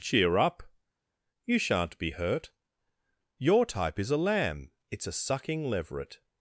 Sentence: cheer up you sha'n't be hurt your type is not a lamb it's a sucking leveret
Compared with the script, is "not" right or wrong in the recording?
wrong